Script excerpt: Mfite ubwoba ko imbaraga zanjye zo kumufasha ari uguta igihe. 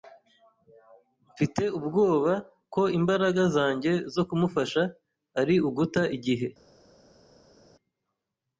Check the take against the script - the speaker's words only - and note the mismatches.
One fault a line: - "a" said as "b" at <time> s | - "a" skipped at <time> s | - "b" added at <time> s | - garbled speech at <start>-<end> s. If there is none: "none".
none